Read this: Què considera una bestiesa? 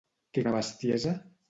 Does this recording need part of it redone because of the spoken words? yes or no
yes